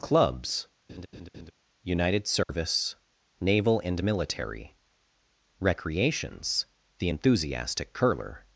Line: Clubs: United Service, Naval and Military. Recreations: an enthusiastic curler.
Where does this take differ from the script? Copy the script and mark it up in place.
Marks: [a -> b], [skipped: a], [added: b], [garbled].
Clubs: United Service, Naval and Military. Recreations: [an -> the] enthusiastic curler.